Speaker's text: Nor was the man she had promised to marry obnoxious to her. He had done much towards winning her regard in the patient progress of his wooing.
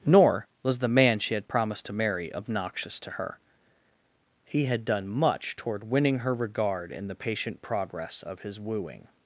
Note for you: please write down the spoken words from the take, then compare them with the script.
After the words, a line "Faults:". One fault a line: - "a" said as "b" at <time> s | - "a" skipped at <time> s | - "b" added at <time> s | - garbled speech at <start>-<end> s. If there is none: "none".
Nor was the man she had promised to marry obnoxious to her. He had done much toward winning her regard in the patient progress of his wooing.
Faults:
- "towards" said as "toward" at 5.5 s